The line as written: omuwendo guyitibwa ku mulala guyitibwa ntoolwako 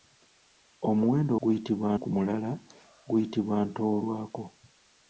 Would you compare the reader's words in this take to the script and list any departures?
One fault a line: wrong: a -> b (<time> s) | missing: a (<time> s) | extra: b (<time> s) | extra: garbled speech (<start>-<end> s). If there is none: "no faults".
no faults